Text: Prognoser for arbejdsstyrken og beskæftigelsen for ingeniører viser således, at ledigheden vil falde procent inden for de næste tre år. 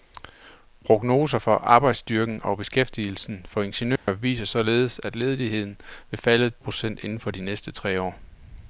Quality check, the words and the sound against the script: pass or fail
fail